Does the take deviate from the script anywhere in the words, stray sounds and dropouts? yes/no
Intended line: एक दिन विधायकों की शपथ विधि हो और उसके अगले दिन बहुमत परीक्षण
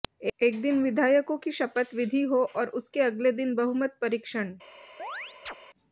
yes